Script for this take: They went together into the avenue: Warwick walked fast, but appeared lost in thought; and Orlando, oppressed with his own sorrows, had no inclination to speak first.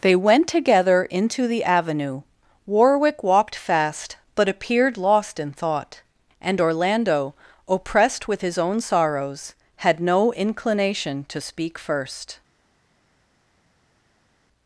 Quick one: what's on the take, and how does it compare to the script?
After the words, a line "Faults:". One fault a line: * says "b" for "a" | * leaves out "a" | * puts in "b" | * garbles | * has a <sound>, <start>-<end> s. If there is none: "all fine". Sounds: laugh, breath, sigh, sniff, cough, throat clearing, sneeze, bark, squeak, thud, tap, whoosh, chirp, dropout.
They went together into the avenue: Warwick walked fast, but appeared lost in thought; and Orlando, oppressed with his own sorrows, had no inclination to speak first.
Faults:
all fine